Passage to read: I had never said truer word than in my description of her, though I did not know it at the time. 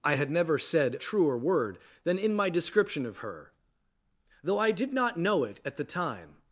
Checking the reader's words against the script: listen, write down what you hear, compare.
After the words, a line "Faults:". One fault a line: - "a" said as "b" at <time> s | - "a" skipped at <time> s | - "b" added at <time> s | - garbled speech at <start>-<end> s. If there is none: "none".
I had never said truer word than in my description of her, though I did not know it at the time.
Faults:
none